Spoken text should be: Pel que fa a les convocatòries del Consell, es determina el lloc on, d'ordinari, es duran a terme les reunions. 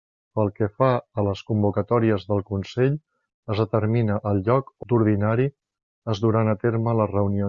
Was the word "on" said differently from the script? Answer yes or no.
yes